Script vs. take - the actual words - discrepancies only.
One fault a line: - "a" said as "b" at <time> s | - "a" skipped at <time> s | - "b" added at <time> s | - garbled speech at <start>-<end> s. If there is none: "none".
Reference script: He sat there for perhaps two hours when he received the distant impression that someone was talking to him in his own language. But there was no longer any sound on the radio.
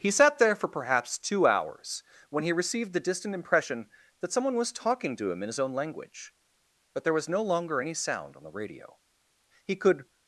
- "He could" added at 9.6 s